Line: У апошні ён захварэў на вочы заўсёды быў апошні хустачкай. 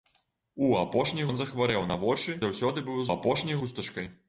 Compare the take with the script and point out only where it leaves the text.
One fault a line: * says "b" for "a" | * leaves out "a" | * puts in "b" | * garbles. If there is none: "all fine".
all fine